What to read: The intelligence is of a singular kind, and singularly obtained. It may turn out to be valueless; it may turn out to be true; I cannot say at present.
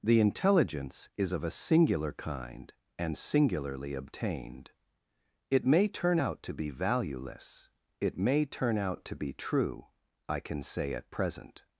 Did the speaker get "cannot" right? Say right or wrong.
wrong